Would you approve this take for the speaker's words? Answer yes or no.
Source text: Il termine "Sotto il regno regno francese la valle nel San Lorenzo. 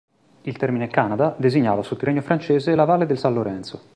no